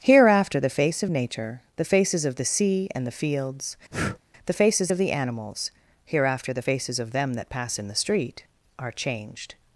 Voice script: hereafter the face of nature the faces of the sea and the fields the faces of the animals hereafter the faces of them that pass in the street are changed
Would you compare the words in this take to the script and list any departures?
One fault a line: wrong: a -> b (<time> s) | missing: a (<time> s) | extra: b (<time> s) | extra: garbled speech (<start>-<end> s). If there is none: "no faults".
no faults